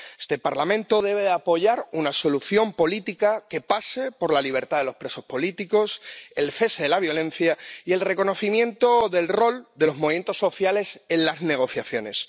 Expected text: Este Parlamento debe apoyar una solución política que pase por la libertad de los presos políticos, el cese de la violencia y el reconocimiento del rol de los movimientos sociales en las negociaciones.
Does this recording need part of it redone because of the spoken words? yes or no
no